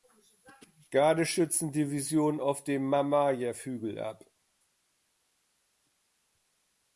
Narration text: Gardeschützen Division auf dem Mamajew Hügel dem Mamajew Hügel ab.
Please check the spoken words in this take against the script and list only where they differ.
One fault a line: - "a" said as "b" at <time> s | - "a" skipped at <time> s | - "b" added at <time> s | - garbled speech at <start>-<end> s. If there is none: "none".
- "dem Mamajew Hügel" skipped at 4.0 s